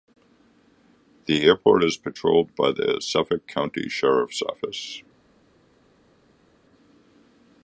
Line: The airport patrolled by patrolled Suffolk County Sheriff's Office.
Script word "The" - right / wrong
right